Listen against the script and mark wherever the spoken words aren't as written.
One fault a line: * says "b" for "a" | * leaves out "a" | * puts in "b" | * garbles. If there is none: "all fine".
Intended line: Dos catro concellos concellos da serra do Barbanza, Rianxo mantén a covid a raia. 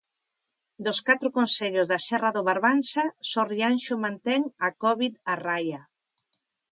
* leaves out "concellos"
* puts in "só"